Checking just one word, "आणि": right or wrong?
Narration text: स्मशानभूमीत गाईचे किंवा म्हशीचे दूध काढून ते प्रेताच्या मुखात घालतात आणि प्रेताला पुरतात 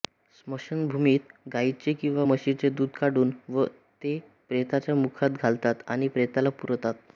right